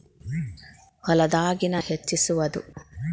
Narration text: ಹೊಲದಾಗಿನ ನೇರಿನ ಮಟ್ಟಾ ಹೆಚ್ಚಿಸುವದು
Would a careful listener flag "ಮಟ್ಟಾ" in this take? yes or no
yes